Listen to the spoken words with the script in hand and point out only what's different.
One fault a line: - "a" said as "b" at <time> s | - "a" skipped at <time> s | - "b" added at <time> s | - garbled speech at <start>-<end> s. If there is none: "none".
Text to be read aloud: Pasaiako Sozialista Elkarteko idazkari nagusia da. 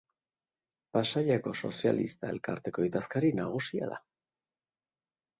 none